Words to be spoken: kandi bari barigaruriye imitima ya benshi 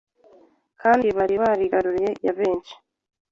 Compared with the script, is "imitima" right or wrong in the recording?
wrong